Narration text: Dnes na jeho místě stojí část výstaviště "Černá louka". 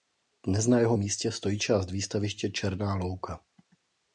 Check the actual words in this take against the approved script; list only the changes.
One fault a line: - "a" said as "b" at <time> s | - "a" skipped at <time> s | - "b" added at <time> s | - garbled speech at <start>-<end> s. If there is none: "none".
none